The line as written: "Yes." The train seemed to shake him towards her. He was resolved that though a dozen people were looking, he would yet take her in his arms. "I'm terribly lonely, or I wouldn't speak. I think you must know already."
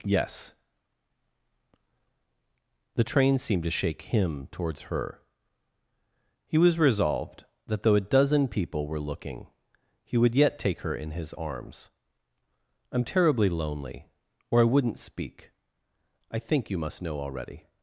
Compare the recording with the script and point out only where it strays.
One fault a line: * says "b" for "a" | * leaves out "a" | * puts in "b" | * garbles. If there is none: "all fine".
all fine